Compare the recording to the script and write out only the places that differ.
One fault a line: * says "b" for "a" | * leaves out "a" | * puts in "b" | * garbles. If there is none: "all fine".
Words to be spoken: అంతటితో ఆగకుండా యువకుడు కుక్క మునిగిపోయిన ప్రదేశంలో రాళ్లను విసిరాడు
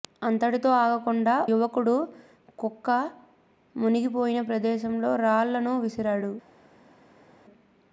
all fine